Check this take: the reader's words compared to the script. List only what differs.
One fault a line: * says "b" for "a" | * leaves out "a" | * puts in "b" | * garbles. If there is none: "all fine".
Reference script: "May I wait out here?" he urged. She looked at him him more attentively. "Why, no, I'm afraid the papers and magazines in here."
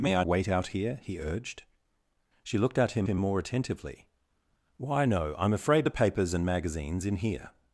all fine